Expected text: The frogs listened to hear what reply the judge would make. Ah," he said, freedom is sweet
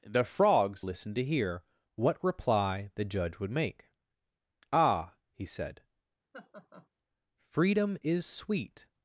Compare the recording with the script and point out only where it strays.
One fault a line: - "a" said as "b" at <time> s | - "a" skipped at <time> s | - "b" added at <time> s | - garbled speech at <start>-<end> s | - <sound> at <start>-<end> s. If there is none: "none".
- laugh at 6.3-6.9 s